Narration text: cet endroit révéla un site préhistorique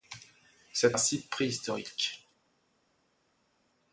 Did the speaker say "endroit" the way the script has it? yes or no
no